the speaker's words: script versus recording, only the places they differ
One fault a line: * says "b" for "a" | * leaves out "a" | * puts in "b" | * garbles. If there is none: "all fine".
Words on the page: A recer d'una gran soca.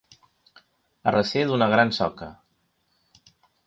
all fine